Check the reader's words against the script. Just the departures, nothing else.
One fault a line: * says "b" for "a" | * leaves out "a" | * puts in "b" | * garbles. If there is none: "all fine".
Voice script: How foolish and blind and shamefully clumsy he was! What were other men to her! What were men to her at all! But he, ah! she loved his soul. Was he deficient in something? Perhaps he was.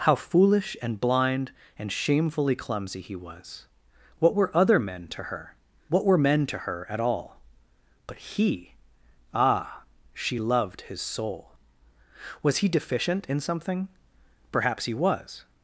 all fine